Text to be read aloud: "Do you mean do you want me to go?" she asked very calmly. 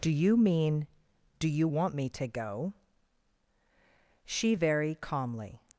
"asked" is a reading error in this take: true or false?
true